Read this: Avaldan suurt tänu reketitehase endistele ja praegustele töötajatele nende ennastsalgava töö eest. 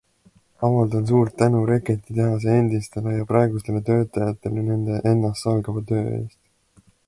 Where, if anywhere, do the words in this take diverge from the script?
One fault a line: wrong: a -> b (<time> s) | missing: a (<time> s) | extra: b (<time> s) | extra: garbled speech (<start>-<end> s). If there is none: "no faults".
no faults